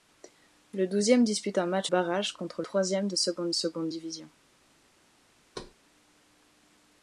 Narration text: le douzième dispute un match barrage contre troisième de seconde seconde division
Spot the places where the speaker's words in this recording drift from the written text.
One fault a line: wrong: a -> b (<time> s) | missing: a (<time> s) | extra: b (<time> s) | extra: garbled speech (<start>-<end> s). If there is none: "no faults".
no faults